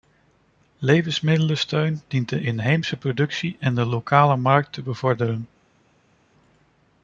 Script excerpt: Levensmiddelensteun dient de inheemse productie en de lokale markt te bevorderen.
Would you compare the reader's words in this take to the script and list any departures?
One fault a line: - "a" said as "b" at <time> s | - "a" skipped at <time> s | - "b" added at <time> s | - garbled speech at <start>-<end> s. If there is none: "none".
none